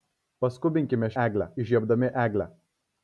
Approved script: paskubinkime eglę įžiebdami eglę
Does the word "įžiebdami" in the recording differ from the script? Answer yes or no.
no